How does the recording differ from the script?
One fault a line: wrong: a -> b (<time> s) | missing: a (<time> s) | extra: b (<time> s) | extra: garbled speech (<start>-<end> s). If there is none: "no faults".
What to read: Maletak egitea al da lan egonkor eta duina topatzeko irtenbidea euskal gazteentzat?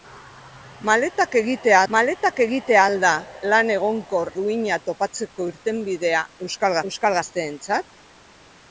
extra: maletak egitea (1.9 s)
missing: eta (4.3 s)
extra: euskal (6.9 s)